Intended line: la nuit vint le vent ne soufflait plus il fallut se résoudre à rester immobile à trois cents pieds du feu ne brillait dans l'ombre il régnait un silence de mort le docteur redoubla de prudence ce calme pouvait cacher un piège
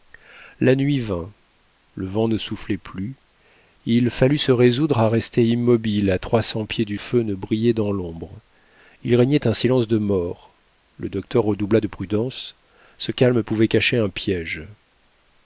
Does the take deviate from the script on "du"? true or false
false